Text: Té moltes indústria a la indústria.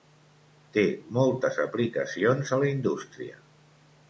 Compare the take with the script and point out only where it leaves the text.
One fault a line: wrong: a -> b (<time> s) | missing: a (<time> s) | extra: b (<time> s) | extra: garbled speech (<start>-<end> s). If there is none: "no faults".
wrong: indústria -> aplicacions (1.6 s)